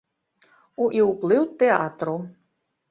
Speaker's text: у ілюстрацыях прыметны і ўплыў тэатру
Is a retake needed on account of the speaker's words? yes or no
yes